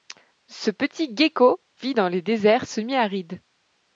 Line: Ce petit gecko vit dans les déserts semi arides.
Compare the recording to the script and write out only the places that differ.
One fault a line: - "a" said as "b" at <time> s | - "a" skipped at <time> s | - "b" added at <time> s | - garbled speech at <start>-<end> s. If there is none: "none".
none